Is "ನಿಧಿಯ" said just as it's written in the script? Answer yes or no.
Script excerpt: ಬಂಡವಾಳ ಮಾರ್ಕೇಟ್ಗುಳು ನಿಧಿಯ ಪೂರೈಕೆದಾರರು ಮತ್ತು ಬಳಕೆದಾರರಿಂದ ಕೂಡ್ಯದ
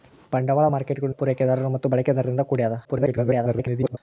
no